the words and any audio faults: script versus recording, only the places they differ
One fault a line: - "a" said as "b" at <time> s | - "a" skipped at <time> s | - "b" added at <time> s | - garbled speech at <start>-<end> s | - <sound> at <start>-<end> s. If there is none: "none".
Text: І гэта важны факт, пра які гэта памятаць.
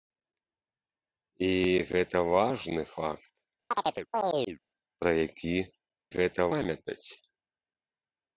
- chirp at 3.7-4.6 s